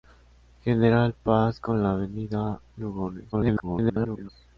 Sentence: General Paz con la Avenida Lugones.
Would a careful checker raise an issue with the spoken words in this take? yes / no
yes